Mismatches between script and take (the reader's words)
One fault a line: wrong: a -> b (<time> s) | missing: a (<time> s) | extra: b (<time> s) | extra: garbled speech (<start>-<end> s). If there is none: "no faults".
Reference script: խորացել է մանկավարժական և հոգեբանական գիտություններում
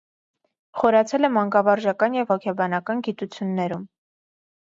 no faults